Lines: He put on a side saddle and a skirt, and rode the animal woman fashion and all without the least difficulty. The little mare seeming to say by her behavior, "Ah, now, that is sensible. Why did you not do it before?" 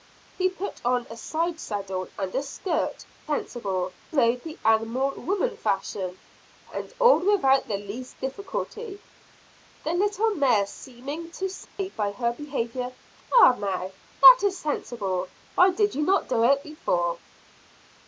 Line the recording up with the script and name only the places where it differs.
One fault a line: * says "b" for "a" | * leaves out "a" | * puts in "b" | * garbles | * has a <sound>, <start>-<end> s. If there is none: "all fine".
* says "sensible" for "and"
* has a dropout, 11.7-11.8 s